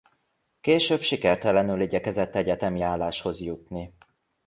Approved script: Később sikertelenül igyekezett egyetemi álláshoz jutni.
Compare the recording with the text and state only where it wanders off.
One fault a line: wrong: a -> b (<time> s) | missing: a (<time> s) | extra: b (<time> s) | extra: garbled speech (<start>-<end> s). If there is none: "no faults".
no faults